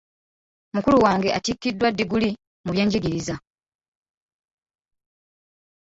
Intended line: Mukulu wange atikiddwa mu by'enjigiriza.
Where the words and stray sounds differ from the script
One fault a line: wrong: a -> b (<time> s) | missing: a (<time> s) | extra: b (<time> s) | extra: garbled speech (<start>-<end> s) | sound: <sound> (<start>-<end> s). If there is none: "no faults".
extra: ddiguli (1.9 s)